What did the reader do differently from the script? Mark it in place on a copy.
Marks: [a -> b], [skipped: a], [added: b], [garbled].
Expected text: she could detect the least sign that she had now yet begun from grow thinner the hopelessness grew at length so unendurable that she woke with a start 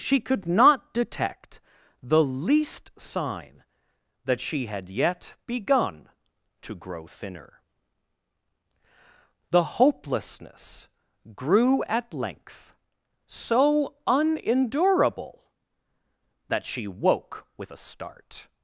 she could [added: not] detect the least sign that she had [skipped: now] yet begun [from -> to] grow thinner the hopelessness grew at length so unendurable that she woke with a start